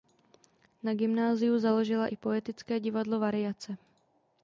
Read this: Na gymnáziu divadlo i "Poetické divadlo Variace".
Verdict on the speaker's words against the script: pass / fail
fail